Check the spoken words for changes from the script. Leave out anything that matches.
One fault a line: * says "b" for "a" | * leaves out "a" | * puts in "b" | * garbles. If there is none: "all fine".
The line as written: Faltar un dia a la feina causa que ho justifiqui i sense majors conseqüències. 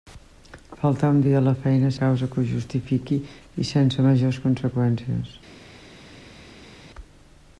all fine